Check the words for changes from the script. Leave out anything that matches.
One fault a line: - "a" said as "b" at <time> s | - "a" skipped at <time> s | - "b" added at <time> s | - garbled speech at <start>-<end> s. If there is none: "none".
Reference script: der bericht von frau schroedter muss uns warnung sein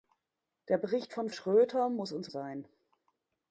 - "frau" skipped at 1.3 s
- "warnung" skipped at 2.3 s